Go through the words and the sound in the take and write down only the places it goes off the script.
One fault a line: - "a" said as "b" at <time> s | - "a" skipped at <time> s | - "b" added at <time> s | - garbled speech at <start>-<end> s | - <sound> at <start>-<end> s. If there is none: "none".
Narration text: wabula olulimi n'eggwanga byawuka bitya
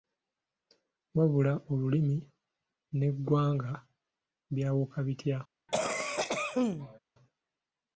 - cough at 5.7-7.0 s